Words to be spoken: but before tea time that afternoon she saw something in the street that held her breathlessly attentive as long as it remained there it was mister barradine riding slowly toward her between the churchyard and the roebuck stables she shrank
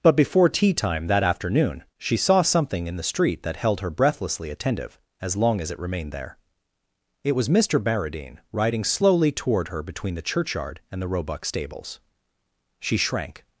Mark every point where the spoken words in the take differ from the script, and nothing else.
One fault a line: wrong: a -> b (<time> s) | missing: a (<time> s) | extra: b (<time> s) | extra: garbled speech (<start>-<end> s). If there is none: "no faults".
no faults